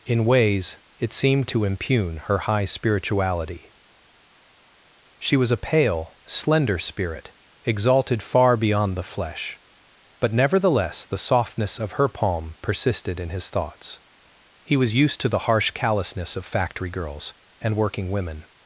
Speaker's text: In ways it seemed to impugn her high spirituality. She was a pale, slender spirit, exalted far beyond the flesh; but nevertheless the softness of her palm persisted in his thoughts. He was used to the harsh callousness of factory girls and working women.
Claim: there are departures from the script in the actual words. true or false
false